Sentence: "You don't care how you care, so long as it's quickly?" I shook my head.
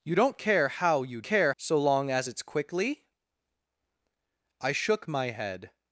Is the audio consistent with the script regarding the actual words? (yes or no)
yes